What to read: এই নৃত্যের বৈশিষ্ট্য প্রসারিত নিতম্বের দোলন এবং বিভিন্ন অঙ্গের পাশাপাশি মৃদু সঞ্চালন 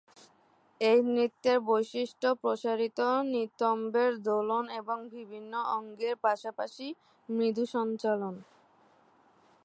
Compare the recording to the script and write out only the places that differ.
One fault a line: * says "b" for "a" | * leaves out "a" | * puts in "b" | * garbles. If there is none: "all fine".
all fine